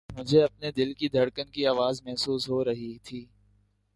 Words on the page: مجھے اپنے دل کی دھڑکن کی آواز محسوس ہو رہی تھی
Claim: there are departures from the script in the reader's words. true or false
false